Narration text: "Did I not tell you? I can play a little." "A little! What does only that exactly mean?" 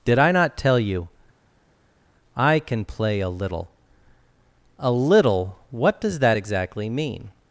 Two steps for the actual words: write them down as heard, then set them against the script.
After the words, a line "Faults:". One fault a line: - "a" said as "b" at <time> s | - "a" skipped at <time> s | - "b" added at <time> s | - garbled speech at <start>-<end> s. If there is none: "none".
"Did I not tell you? I can play a little." "A little! What does that exactly mean?"
Faults:
- "only" skipped at 6.2 s